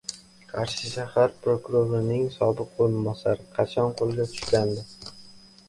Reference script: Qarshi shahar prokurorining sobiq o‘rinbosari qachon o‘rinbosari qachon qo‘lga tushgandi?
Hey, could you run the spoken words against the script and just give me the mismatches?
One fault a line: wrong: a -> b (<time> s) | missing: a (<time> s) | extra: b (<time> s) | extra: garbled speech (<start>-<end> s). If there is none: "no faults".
missing: o‘rinbosari qachon (4.0 s)